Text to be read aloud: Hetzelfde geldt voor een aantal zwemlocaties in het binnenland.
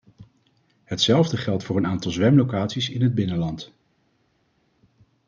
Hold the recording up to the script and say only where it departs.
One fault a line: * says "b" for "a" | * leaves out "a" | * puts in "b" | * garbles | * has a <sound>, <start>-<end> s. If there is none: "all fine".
all fine